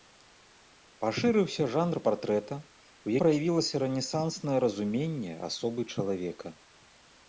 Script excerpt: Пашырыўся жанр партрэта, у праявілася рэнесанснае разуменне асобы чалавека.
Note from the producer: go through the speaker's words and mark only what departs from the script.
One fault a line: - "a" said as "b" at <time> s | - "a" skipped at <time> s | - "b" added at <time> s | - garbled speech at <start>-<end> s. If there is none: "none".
none